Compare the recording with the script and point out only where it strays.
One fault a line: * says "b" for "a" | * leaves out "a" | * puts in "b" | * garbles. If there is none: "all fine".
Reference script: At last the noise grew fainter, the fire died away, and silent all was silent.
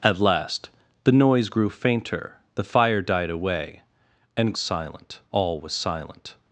all fine